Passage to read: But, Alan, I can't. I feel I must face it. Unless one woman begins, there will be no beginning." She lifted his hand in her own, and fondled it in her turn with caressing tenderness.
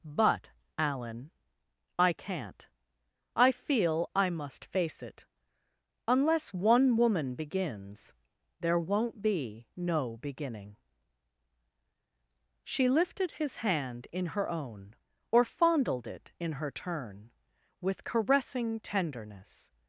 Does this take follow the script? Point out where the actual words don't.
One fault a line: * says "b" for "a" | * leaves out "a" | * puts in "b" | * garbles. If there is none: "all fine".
* says "won't" for "will"
* says "or" for "and"